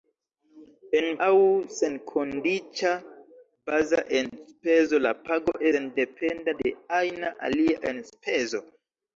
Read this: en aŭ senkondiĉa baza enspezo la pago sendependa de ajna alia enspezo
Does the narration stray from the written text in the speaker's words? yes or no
no